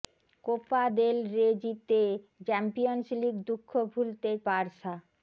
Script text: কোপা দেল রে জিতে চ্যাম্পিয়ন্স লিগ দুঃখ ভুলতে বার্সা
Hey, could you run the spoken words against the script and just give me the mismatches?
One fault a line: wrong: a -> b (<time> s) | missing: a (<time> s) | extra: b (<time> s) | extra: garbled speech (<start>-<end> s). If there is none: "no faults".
no faults